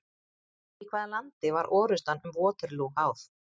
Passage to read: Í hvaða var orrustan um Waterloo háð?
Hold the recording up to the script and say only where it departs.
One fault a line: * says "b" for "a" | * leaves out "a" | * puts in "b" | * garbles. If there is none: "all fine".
* puts in "landi"